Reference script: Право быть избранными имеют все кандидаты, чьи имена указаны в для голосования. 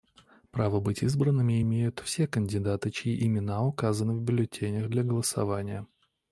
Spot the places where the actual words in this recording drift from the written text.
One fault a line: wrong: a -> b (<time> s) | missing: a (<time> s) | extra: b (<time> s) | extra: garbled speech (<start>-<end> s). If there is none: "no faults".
extra: бюллетенях (4.2 s)